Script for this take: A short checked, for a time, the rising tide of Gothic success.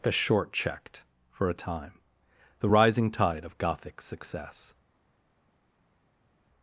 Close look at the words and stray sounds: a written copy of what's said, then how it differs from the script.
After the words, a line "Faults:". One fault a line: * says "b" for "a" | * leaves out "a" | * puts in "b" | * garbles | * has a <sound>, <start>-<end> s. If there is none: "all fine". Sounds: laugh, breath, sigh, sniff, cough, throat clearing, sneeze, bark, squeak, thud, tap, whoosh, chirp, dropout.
A short checked, for a time, the rising tide of Gothic success.
Faults:
all fine